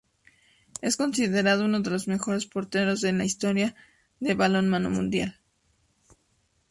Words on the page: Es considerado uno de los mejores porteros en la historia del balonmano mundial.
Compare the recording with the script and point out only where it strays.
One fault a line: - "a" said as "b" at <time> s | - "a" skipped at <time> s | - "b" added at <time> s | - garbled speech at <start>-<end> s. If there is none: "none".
none